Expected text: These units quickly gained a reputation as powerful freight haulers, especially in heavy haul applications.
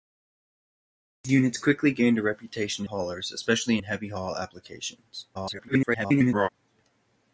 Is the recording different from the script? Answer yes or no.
yes